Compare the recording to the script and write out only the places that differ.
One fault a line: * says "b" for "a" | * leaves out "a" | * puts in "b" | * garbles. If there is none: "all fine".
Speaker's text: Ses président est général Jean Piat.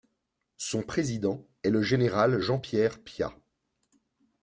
* says "Son" for "Ses"
* puts in "le"
* puts in "Pierre"